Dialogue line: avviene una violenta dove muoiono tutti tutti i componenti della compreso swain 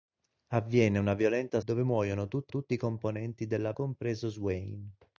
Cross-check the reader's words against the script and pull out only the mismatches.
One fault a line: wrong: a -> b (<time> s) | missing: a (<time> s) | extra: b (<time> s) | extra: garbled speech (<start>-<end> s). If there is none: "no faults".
no faults